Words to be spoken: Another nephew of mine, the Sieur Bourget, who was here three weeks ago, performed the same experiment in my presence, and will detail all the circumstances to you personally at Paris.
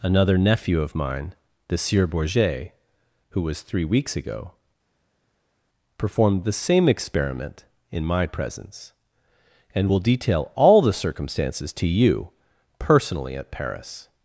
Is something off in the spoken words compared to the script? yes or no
yes